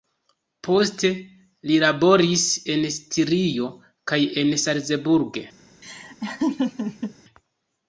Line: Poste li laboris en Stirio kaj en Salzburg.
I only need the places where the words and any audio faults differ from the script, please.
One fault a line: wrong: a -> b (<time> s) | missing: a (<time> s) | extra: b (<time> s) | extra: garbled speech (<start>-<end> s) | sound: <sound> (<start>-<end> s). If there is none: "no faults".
sound: laugh (5.8-7.1 s)